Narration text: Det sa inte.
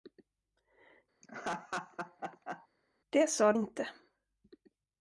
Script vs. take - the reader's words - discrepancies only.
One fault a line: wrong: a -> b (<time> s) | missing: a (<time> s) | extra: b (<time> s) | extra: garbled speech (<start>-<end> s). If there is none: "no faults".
no faults